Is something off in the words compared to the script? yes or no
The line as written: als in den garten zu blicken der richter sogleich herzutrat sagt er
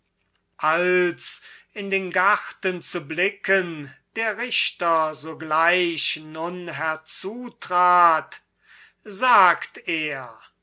yes